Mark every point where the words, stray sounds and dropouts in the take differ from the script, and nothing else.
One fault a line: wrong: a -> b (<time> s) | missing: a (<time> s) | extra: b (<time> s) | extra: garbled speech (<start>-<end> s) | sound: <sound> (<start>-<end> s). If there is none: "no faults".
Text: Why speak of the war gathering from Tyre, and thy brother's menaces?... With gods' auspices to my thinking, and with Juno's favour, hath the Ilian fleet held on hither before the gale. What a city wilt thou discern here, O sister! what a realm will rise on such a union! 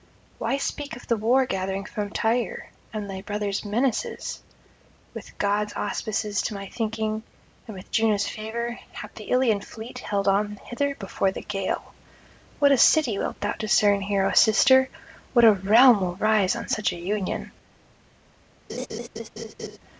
sound: laugh (18.7-19.8 s)